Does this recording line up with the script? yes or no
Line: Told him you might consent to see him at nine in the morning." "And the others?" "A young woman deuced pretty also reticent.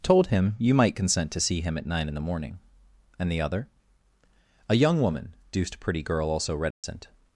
no